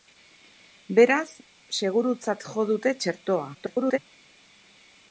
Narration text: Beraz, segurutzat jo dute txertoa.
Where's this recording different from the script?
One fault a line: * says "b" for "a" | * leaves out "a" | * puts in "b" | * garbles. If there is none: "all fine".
* garbles